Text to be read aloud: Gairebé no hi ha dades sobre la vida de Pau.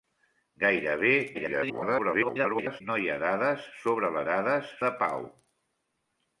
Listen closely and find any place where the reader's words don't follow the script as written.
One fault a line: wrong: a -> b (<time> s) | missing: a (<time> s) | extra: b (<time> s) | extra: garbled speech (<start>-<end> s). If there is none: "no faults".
extra: garbled speech (1.3-2.8 s)
wrong: vida -> dades (4.3 s)